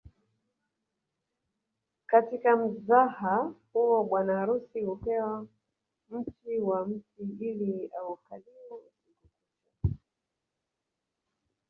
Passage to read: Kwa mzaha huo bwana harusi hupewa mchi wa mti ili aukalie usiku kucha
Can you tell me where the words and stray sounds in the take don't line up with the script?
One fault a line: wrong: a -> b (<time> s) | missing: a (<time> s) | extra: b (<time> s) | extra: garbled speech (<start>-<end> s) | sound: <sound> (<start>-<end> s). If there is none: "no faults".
wrong: Kwa -> Katika (2.1 s)